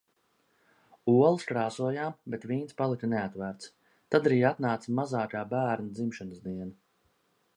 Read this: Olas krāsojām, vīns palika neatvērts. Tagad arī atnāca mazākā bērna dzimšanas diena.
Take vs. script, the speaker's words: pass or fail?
fail